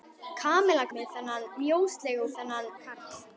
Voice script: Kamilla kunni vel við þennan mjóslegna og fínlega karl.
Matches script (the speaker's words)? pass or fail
fail